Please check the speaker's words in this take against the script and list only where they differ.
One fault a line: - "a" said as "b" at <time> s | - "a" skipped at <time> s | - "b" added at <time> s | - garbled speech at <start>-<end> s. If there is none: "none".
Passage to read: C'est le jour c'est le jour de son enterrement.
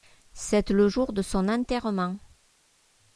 - "c'est le jour" skipped at 1.1 s